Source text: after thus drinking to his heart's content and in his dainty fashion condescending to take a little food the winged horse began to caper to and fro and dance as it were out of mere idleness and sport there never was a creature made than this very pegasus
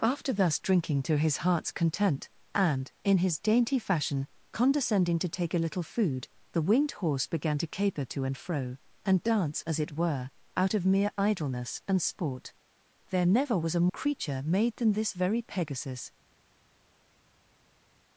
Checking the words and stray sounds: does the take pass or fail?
pass